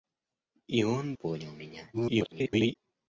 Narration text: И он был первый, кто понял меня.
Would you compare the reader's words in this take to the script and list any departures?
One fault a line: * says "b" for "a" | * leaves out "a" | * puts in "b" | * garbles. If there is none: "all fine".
* leaves out "был первый кто"
* garbles